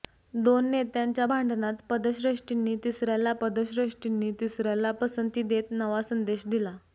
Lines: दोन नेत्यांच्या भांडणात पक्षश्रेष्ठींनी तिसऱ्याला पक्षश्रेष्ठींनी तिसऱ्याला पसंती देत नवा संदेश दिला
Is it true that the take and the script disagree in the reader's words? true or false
false